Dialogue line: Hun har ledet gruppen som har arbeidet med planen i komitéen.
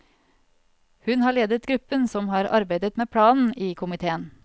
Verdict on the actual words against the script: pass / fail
pass